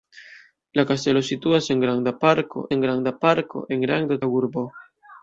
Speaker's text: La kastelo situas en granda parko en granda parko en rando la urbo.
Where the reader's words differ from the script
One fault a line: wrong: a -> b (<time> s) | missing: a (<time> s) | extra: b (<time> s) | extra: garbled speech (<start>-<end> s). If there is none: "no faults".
no faults